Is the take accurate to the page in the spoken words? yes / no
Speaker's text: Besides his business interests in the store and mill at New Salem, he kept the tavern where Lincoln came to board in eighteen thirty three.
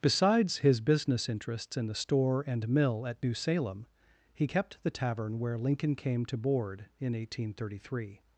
yes